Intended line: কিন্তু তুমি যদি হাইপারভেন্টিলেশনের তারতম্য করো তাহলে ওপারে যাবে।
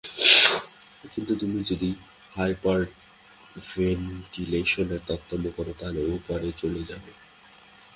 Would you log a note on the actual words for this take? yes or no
yes